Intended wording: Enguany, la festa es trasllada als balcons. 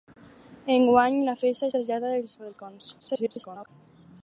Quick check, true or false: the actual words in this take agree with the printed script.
false